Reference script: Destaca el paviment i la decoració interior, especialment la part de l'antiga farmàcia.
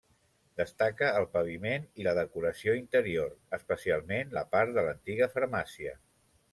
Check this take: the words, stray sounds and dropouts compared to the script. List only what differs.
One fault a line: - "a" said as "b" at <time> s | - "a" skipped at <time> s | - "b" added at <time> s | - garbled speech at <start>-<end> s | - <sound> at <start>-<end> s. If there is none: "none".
none